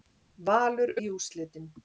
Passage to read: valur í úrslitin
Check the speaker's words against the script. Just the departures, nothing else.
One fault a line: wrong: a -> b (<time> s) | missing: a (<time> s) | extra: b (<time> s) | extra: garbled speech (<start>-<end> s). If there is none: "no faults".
no faults